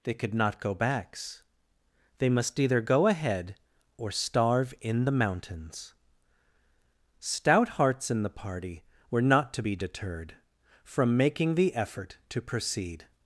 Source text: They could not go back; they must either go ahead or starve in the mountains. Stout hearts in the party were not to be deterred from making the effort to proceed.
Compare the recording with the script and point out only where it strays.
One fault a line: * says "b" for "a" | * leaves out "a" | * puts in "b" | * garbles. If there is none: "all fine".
* says "backs" for "back"